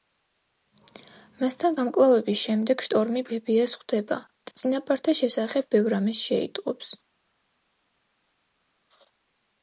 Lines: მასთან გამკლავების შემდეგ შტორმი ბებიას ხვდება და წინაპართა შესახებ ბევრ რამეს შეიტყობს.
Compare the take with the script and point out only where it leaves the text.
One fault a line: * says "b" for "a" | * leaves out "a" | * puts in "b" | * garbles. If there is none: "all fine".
all fine